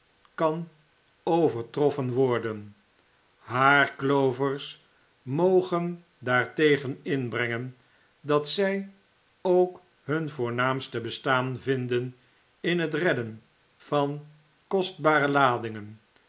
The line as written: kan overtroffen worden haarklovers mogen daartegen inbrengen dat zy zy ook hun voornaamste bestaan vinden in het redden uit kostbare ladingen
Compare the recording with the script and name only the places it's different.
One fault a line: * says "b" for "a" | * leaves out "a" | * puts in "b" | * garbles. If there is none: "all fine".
* leaves out "zy"
* says "van" for "uit"